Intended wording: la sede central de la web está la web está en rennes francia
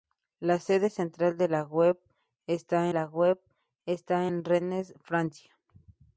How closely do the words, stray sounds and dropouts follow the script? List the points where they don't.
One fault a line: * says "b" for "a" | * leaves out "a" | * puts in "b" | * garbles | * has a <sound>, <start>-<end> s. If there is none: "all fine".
all fine